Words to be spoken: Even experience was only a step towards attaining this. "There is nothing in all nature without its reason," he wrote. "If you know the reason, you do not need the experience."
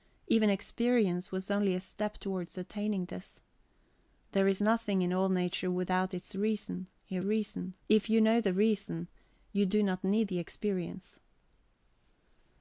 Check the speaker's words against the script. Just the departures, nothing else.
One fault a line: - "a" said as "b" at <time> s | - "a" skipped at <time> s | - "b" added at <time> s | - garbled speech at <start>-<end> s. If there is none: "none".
- "wrote" said as "reason" at 7.2 s